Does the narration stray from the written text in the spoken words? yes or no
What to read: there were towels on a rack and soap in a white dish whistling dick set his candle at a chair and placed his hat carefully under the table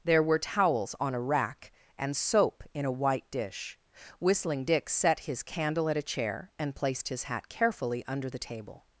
no